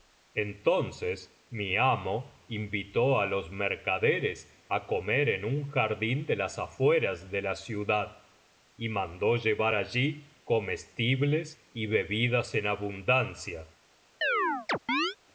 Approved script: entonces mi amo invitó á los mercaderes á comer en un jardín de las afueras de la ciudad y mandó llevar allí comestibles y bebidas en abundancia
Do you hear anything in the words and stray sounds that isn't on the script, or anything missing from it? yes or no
yes